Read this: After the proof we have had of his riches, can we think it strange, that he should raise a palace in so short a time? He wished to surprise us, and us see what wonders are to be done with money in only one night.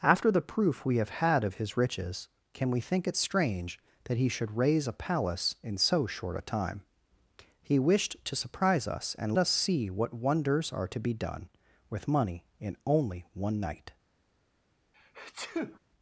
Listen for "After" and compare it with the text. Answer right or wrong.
right